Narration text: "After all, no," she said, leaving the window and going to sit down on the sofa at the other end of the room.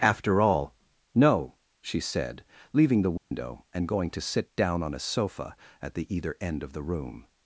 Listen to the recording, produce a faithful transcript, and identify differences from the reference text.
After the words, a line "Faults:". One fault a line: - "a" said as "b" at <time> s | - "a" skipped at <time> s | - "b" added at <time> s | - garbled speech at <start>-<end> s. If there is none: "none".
"After all, no," she said, leaving the window and going to sit down on a sofa at the either end of the room.
Faults:
- "the" said as "a" at 5.0 s
- "other" said as "either" at 6.1 s